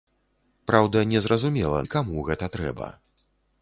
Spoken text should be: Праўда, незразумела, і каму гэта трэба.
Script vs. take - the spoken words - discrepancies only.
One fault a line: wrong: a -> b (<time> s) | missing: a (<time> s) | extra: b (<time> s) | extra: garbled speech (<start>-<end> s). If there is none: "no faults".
no faults